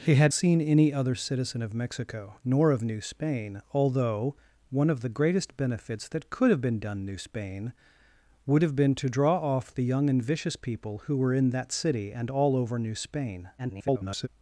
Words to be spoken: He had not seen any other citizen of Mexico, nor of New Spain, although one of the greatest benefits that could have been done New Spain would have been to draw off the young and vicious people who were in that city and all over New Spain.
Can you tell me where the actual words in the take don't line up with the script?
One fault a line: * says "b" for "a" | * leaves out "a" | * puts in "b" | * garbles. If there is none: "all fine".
* leaves out "not"
* garbles